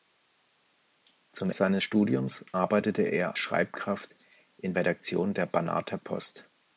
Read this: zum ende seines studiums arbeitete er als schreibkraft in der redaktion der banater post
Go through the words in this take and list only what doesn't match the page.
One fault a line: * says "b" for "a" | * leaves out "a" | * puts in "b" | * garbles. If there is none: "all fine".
* leaves out "ende"
* leaves out "als"
* leaves out "der"